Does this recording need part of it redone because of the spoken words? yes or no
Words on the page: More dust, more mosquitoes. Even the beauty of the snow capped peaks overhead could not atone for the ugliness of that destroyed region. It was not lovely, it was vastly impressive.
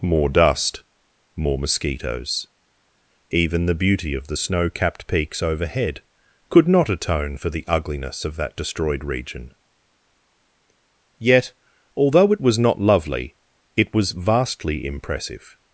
yes